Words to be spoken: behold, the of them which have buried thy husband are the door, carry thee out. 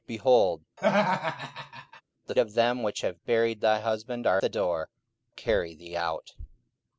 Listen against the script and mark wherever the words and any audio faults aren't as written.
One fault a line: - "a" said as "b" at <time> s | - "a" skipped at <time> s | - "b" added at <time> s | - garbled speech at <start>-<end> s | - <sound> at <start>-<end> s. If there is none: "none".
- laugh at 0.8-2.0 s